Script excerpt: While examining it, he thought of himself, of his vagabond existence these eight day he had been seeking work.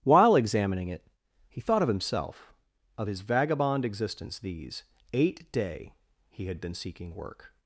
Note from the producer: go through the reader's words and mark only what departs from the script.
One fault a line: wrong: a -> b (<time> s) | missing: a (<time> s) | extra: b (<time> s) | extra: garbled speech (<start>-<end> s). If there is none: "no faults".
no faults